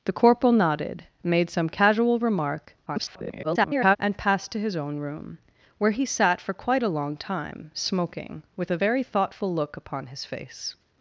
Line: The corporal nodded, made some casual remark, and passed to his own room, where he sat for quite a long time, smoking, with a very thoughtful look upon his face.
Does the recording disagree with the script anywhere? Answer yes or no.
yes